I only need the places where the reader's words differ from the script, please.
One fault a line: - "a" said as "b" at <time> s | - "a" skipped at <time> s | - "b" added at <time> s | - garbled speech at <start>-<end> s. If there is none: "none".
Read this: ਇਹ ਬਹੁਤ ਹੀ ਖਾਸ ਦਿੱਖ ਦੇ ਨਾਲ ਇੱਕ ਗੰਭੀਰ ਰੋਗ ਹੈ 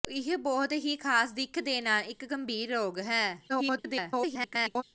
- garbled speech at 3.5-4.8 s